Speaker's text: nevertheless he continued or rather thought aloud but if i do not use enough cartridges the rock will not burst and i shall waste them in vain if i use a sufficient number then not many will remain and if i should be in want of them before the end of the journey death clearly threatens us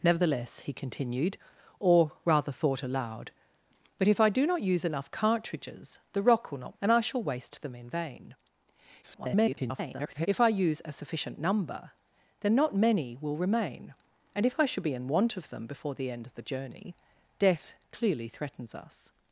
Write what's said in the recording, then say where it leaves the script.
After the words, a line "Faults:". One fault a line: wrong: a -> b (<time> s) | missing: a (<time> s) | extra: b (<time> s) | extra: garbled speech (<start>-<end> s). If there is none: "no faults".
nevertheless he continued or rather thought aloud but if i do not use enough cartridges the rock will not and i shall waste them in vain [garbled] if i use a sufficient number then not many will remain and if i should be in want of them before the end of the journey death clearly threatens us
Faults:
missing: burst (6.8 s)
extra: garbled speech (9.0-10.3 s)